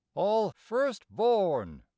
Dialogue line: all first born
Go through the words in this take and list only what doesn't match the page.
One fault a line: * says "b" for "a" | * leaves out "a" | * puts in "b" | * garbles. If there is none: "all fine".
all fine